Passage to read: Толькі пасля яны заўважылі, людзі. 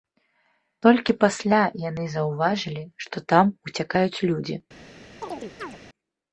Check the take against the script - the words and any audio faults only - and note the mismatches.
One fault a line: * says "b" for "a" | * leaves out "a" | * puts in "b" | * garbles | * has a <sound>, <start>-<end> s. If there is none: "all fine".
* puts in "што там уцякаюць"
* has a chirp, 5.2-5.8 s